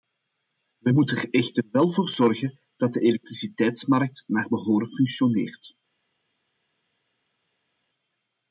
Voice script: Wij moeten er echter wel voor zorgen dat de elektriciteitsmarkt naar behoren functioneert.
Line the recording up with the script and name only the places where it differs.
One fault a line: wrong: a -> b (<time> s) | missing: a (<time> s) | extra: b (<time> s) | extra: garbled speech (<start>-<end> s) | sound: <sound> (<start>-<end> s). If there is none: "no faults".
no faults